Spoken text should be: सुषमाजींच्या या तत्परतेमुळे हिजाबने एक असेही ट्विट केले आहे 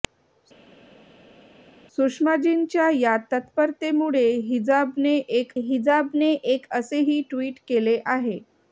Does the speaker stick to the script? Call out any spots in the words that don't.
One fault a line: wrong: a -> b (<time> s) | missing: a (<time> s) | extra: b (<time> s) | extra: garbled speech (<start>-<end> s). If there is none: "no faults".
extra: हिजाबने एक (5.6 s)